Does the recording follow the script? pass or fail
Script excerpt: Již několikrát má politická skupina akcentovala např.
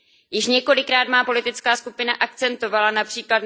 pass